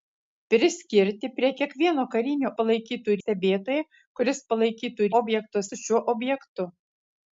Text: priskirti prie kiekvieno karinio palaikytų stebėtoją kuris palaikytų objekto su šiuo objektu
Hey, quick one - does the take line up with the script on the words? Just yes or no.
yes